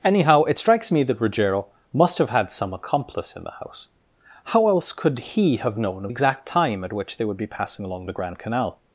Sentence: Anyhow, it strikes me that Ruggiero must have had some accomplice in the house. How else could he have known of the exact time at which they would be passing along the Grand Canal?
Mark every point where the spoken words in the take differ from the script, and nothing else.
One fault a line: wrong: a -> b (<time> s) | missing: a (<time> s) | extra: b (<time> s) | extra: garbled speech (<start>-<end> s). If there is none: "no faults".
missing: the (6.1 s)